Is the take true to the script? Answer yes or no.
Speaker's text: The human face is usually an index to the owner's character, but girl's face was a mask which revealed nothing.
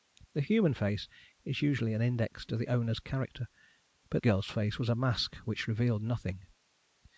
yes